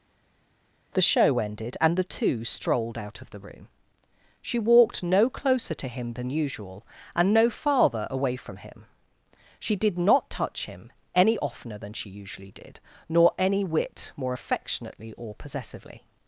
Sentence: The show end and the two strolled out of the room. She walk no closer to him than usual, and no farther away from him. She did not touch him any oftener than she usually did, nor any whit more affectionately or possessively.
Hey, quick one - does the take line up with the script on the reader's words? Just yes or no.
no